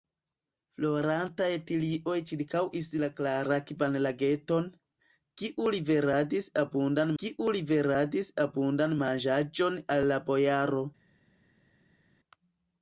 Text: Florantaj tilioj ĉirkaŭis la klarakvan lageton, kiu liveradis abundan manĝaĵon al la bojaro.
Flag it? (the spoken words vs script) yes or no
yes